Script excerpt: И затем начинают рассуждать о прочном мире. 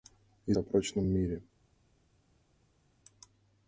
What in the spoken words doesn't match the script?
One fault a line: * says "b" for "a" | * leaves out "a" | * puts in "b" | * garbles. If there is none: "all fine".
* leaves out "затем начинают рассуждать"